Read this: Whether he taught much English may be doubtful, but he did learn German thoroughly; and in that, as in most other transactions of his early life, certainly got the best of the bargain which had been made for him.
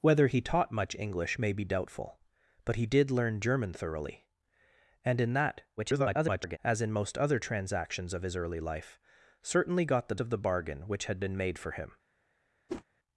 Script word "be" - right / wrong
right